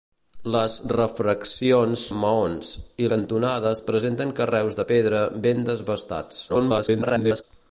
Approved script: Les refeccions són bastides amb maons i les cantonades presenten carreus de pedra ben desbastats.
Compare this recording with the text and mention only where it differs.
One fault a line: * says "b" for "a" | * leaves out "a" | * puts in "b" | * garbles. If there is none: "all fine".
* leaves out "són bastides"
* leaves out "les"
* garbles